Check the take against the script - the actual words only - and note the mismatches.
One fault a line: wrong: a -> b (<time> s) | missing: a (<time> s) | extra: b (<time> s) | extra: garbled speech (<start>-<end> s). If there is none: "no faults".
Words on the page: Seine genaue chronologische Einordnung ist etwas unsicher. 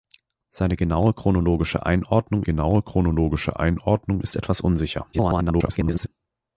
extra: genaue chronologische Einordnung (2.4 s)
extra: garbled speech (5.1-6.1 s)